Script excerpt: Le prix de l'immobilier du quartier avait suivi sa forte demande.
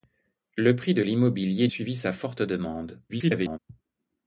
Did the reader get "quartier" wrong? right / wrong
wrong